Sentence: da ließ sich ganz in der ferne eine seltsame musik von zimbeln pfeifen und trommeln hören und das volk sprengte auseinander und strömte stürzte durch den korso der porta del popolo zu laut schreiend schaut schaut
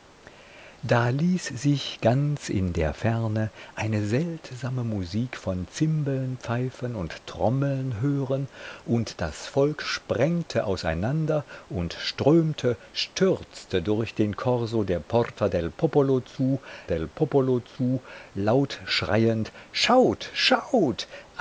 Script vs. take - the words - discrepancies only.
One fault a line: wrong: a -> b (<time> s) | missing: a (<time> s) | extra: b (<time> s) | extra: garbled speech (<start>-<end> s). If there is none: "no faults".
extra: del popolo zu (16.9 s)